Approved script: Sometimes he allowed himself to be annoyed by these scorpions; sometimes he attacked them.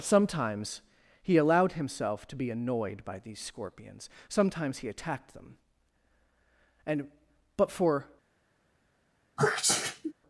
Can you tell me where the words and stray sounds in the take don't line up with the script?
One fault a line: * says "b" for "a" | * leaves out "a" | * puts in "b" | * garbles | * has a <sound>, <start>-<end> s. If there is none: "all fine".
* puts in "And but for"
* has a sneeze, 9.4-10.1 s